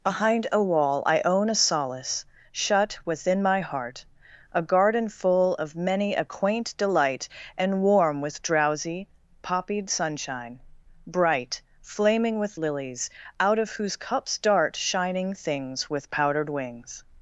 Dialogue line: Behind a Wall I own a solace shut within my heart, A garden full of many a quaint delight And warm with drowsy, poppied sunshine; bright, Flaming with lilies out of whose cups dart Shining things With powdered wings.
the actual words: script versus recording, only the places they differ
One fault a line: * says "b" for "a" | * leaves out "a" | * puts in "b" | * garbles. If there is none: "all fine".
all fine